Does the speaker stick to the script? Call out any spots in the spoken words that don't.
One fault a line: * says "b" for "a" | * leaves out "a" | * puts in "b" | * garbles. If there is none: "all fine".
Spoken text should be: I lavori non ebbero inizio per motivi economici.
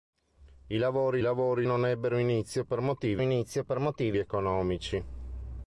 * puts in "lavori"
* puts in "inizio per motivi"